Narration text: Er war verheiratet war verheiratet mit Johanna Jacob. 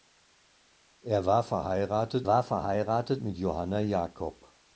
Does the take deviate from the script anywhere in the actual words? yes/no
no